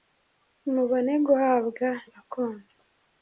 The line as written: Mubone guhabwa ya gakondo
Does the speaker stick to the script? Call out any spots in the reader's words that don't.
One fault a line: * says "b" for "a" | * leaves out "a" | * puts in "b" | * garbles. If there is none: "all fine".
* leaves out "ya"